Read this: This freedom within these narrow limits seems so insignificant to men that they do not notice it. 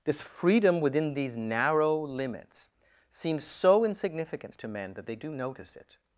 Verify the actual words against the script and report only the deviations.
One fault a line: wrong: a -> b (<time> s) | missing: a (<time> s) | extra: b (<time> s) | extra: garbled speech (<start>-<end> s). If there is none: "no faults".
missing: not (5.3 s)